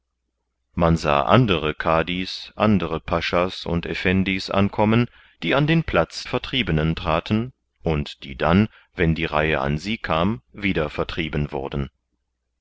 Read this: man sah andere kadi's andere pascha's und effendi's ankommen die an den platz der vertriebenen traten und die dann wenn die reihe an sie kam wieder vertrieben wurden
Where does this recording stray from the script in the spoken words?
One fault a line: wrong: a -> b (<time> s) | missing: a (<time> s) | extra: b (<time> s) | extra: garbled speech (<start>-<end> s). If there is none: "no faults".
missing: der (6.2 s)